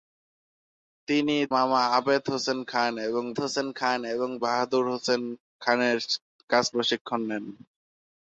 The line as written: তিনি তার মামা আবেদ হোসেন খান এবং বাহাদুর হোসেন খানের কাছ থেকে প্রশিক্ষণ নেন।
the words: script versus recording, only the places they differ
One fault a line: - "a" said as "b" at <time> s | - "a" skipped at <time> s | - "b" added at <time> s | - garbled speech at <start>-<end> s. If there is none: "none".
- "তার" skipped at 1.4 s
- "হোসেন খান এবং" added at 3.4 s
- "থেকে" skipped at 6.6 s